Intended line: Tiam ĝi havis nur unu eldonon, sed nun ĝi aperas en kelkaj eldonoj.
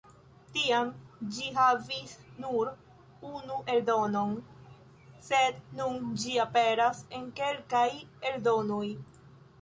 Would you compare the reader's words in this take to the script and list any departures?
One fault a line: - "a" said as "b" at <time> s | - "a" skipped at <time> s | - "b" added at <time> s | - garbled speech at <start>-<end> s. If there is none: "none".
none